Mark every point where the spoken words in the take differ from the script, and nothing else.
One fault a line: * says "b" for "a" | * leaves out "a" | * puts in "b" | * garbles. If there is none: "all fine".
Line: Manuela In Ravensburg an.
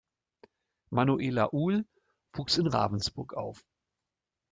* puts in "Uhl wuchs"
* says "auf" for "an"